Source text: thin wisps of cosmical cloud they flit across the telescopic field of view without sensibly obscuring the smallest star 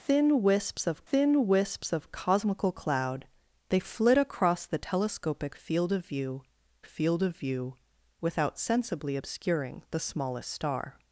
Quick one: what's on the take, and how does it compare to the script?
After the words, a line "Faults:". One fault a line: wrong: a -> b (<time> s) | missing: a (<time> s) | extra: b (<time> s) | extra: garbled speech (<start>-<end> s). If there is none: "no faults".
thin wisps of thin wisps of cosmical cloud they flit across the telescopic field of view field of view without sensibly obscuring the smallest star
Faults:
extra: thin wisps of (1.1 s)
extra: field of view (6.8 s)